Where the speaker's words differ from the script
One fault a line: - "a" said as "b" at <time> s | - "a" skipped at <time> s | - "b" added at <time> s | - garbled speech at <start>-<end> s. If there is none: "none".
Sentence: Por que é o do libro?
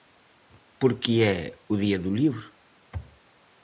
- "día" added at 1.8 s